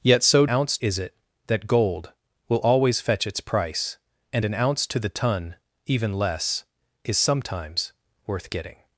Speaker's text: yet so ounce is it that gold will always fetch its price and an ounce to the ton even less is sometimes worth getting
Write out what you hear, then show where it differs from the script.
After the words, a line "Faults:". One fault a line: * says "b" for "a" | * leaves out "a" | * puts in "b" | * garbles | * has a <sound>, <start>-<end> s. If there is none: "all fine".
yet so ounce is it that gold will always fetch its price and an ounce to the ton even less is sometimes worth getting
Faults:
all fine